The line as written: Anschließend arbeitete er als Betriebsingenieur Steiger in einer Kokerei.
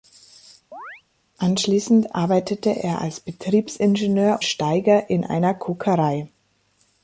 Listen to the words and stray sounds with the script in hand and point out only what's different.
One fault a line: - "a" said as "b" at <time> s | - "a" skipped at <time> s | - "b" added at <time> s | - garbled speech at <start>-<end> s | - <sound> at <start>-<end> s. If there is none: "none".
- chirp at 0.7-1.0 s